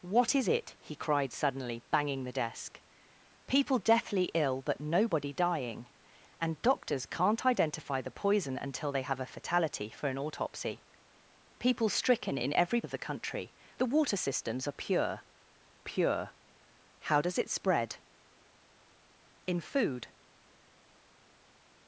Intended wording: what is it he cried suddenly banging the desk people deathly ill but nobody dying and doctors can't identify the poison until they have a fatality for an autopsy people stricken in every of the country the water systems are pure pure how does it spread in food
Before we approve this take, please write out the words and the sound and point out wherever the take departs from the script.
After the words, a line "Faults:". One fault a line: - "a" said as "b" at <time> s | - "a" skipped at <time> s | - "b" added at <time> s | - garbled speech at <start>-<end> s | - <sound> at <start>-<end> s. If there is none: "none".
what is it he cried suddenly banging the desk people deathly ill but nobody dying and doctors can't identify the poison until they have a fatality for an autopsy people stricken in every of the country the water systems are pure pure how does it spread in food
Faults:
none